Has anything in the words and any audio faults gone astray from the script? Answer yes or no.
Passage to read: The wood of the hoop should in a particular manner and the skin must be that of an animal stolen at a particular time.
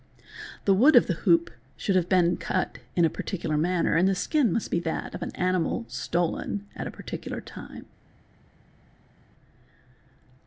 yes